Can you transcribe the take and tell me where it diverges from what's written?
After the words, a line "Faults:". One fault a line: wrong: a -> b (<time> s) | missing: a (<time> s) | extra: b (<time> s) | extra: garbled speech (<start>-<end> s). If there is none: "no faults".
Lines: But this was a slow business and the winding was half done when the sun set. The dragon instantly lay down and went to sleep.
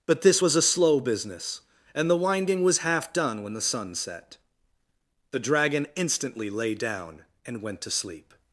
But this was a slow business and the winding was half done when the sun set. The dragon instantly lay down and went to sleep.
Faults:
no faults